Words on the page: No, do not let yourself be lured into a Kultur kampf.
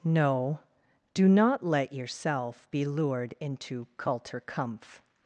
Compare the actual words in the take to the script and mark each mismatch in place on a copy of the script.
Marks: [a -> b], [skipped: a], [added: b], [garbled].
No, do not let yourself be lured into [skipped: a] Kultur kampf.